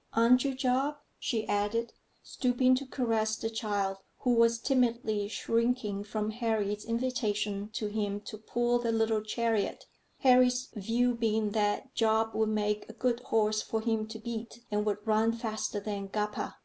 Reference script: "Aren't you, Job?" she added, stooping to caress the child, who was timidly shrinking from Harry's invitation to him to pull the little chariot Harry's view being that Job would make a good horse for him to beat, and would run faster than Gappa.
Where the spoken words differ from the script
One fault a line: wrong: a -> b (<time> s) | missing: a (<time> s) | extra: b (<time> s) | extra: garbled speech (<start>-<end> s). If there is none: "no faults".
no faults